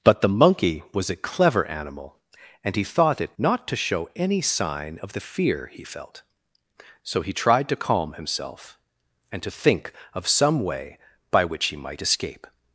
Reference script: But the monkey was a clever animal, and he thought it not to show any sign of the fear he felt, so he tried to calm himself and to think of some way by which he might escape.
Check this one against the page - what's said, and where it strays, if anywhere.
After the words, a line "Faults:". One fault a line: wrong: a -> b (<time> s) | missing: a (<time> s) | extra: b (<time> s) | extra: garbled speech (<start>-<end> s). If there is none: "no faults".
But the monkey was a clever animal, and he thought it not to show any sign of the fear he felt, so he tried to calm himself and to think of some way by which he might escape.
Faults:
no faults